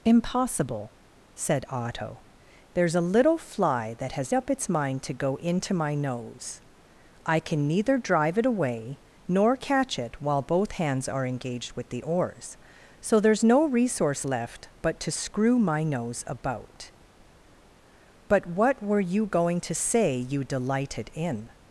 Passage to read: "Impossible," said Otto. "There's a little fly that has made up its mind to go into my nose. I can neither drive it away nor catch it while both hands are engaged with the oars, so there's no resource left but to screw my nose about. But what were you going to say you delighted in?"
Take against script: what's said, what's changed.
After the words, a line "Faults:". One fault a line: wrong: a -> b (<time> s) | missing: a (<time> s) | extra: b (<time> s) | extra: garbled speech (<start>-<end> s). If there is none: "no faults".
"Impossible," said Otto. "There's a little fly that has up its mind to go into my nose. I can neither drive it away nor catch it while both hands are engaged with the oars, so there's no resource left but to screw my nose about. But what were you going to say you delighted in?"
Faults:
missing: made (4.3 s)